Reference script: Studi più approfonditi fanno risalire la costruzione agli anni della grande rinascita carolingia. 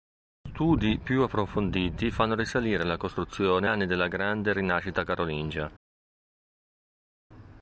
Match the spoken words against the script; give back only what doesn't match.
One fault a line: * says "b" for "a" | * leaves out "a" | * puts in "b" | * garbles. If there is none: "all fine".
* leaves out "agli"